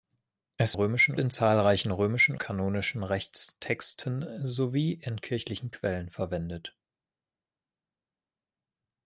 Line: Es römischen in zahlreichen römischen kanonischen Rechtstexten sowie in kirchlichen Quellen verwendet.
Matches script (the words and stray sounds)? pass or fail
pass